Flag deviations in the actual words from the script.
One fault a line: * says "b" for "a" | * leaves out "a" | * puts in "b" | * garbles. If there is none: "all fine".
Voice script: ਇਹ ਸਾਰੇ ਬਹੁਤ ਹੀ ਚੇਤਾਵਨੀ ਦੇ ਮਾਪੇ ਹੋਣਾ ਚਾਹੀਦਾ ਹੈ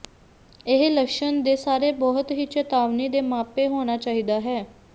* puts in "ਲੱਛਣ ਦੇ"